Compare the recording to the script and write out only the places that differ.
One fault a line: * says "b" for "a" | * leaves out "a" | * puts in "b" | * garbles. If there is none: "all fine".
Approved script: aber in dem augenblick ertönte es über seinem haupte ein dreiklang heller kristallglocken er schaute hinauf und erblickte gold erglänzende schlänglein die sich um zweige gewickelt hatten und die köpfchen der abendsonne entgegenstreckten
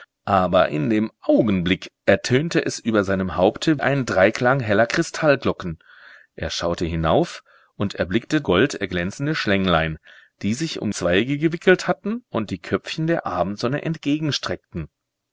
all fine